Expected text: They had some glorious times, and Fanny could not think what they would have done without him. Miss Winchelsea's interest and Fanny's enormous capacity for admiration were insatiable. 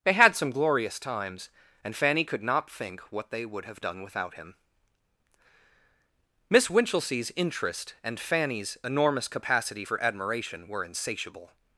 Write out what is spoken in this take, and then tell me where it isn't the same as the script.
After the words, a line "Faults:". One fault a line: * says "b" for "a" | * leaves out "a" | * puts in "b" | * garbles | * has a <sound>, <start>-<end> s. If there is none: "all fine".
They had some glorious times, and Fanny could not think what they would have done without him. Miss Winchelsea's interest and Fanny's enormous capacity for admiration were insatiable.
Faults:
all fine